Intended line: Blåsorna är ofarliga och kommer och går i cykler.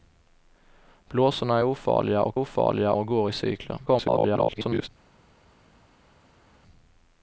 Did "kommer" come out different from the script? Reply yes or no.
yes